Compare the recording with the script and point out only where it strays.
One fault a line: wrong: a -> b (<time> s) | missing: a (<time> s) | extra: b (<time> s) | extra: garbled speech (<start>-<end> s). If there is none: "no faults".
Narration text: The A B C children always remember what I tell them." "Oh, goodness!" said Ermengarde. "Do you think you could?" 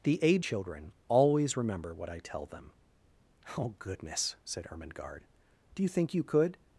missing: B C (0.4 s)